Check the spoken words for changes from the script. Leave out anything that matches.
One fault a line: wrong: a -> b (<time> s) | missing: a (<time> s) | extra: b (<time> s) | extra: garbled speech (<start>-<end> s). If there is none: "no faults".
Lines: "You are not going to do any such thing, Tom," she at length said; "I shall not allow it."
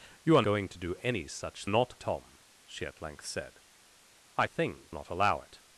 missing: not (0.4 s)
wrong: thing -> not (1.6 s)
wrong: shall -> thing (4.4 s)